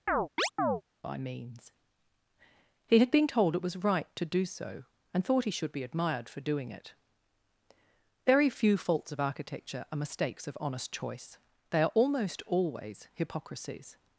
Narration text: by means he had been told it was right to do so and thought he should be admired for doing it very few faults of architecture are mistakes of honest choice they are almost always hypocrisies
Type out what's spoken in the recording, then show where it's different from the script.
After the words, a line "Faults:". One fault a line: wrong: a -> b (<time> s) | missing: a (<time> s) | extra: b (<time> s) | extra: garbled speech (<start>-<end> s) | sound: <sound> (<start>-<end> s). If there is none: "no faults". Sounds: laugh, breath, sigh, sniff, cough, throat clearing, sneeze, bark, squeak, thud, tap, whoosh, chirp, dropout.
by means he had been told it was right to do so and thought he should be admired for doing it very few faults of architecture are mistakes of honest choice they are almost always hypocrisies
Faults:
sound: chirp (0.1-0.8 s)